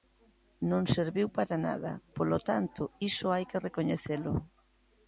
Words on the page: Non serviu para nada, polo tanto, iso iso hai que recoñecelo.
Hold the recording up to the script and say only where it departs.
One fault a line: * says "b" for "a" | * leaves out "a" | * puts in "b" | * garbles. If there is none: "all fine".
* leaves out "iso"